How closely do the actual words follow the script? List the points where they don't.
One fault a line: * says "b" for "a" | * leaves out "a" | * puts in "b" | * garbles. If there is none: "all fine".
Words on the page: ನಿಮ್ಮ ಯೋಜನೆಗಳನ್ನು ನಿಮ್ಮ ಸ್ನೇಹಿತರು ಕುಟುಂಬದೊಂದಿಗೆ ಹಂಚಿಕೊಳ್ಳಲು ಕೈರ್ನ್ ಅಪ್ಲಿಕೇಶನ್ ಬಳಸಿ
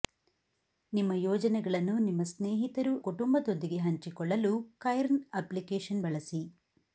all fine